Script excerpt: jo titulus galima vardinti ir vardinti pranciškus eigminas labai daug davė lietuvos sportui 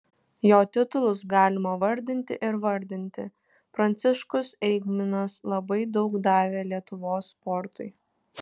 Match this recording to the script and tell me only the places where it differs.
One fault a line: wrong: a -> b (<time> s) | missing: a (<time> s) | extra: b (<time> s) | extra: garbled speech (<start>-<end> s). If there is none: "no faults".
no faults